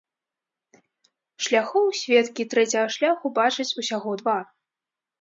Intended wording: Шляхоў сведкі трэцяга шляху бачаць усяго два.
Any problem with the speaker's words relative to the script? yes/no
no